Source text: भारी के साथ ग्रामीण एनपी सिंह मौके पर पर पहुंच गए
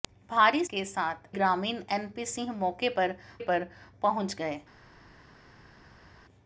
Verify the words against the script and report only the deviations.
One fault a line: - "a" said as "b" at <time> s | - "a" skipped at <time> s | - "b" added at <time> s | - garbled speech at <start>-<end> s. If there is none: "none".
none